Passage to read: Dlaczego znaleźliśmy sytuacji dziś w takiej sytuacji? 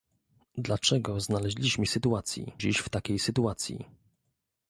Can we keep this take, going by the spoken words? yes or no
yes